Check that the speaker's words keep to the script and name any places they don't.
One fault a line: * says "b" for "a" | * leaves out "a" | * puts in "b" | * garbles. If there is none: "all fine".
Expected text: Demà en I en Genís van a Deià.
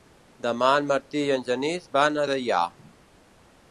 * puts in "Martí"